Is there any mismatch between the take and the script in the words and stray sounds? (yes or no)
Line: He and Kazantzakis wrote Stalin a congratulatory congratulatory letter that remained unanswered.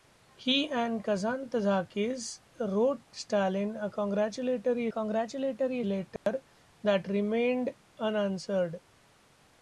yes